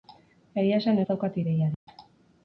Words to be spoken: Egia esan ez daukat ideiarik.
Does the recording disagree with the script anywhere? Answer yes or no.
no